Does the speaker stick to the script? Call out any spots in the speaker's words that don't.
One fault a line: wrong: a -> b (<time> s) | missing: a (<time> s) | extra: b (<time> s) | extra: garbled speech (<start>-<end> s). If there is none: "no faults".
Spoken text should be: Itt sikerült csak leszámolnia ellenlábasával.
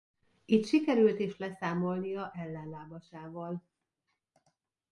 wrong: csak -> is (1.2 s)